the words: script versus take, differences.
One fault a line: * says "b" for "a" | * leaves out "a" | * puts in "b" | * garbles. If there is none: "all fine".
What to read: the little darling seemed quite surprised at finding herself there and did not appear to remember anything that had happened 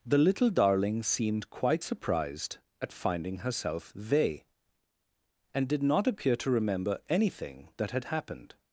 * says "they" for "there"